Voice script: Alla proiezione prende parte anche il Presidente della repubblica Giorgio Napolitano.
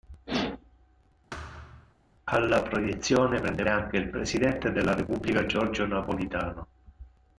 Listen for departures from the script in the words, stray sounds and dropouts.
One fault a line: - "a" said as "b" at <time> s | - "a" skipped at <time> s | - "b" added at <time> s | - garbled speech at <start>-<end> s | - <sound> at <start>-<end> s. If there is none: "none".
- thud at 1.3-1.9 s
- "parte" skipped at 3.6 s